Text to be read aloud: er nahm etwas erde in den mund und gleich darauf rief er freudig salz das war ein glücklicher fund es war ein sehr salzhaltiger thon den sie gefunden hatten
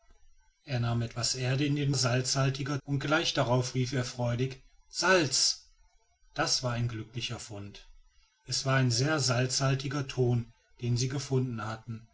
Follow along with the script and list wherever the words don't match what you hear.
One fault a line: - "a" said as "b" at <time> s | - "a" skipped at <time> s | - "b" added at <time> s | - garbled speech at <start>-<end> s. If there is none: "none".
- "mund" said as "salzhaltiger" at 1.9 s